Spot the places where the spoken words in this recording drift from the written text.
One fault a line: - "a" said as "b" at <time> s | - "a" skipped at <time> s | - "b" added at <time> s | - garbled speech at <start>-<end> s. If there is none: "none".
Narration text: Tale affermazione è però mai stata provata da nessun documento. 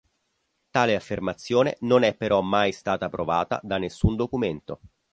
- "non" added at 1.8 s